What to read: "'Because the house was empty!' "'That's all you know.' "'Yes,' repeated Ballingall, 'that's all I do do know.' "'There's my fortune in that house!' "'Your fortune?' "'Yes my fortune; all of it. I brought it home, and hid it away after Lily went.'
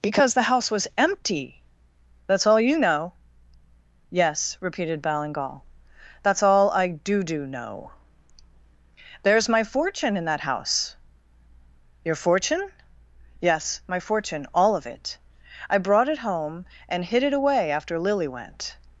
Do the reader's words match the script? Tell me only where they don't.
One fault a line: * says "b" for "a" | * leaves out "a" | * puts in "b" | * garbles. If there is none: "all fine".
all fine